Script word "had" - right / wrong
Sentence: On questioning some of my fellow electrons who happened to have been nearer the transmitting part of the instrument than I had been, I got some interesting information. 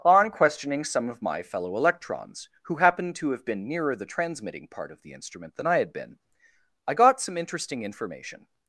right